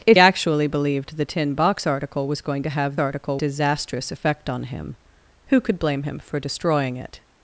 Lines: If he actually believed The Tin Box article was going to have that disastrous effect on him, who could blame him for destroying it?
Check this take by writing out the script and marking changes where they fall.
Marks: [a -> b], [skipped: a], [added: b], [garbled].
If [skipped: he] actually believed The Tin Box article was going to have [that -> article] disastrous effect on him, who could blame him for destroying it?